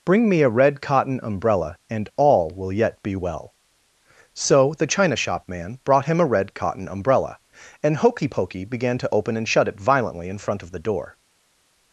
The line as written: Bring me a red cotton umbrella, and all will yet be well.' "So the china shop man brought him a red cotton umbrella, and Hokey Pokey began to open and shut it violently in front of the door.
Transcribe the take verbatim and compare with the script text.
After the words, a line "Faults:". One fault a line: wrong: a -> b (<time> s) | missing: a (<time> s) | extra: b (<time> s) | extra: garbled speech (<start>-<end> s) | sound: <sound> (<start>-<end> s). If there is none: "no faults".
Bring me a red cotton umbrella, and all will yet be well.' "So the china shop man brought him a red cotton umbrella, and Hokey Pokey began to open and shut it violently in front of the door.
Faults:
no faults